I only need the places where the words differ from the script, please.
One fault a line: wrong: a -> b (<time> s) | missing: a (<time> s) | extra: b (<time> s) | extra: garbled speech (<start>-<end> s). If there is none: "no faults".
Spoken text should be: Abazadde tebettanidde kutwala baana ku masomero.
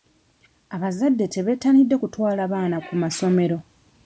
no faults